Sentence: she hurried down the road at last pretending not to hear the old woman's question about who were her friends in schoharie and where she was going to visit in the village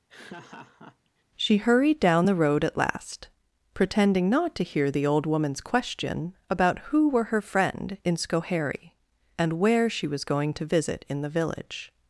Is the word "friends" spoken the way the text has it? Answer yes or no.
no